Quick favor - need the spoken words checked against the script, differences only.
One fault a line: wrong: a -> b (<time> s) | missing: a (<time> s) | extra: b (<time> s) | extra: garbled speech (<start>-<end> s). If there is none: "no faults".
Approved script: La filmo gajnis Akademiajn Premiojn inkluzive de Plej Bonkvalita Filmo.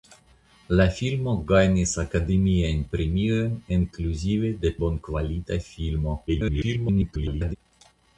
missing: Plej (4.8 s)
extra: garbled speech (6.3-7.6 s)